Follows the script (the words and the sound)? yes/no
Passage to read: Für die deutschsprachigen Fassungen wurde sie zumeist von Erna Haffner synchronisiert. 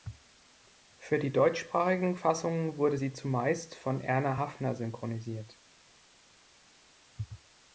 yes